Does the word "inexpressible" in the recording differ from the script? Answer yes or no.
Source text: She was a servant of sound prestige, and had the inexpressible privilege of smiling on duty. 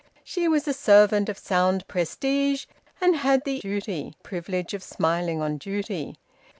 yes